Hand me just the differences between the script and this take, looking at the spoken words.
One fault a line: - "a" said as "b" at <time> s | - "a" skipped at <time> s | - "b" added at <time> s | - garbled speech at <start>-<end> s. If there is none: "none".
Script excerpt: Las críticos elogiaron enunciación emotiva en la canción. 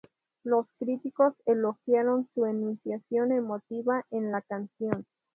- "Las" said as "Los" at 0.4 s
- "su" added at 2.3 s